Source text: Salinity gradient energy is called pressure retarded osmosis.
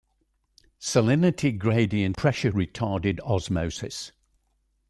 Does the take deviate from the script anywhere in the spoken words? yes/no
yes